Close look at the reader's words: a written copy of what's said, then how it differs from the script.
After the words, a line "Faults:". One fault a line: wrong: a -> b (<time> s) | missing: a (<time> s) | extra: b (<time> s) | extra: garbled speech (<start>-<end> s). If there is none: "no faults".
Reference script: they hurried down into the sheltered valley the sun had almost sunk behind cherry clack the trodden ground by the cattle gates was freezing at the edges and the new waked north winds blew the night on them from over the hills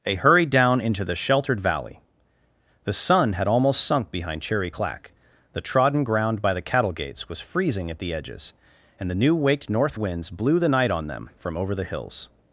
they hurried down into the sheltered valley the sun had almost sunk behind cherry clack the trodden ground by the cattle gates was freezing at the edges and the new waked north winds blew the night on them from over the hills
Faults:
no faults